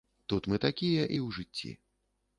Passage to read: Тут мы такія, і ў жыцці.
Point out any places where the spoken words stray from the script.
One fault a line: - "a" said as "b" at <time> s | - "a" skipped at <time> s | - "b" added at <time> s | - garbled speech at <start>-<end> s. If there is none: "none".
none